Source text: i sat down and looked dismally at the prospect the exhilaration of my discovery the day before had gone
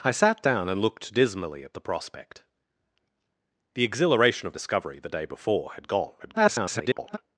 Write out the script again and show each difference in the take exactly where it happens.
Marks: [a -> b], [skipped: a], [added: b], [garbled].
i sat down and looked dismally at the prospect the exhilaration of [skipped: my] discovery the day before had gone [garbled]